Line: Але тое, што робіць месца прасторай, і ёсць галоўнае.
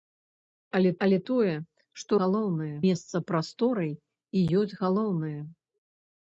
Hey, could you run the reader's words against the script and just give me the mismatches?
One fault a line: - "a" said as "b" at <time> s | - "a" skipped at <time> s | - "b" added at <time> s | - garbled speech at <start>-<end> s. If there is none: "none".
- "але" added at 1.1 s
- "робіць" said as "галоўнае" at 2.2 s